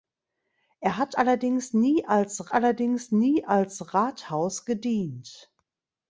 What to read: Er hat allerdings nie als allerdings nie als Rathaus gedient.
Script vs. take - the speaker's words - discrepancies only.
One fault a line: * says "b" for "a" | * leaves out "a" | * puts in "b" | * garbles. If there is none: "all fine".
all fine